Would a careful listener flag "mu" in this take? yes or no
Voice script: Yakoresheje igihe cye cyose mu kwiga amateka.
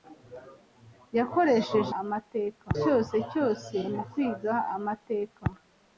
no